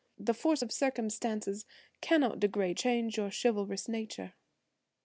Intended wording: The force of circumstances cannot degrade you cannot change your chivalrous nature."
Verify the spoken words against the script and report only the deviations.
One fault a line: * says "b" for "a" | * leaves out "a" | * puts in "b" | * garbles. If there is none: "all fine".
* leaves out "you cannot"